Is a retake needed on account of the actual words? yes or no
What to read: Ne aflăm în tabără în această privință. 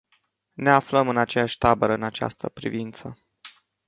yes